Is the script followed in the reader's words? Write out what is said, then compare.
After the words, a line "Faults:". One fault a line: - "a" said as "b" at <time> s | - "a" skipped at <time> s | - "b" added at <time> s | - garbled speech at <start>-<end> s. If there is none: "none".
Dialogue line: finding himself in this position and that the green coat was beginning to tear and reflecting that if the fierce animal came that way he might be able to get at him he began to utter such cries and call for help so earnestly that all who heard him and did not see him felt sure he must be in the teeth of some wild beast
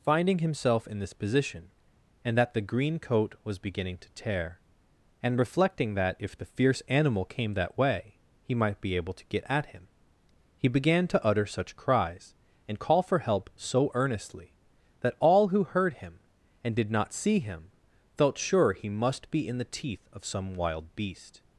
finding himself in this position and that the green coat was beginning to tear and reflecting that if the fierce animal came that way he might be able to get at him he began to utter such cries and call for help so earnestly that all who heard him and did not see him felt sure he must be in the teeth of some wild beast
Faults:
none